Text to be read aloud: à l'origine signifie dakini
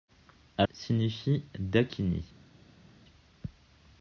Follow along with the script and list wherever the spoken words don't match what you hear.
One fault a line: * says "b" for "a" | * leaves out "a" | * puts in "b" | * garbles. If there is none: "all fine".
* leaves out "l'origine"